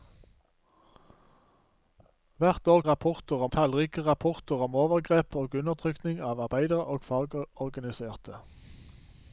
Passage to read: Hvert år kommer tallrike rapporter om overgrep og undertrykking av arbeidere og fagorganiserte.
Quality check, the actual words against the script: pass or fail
fail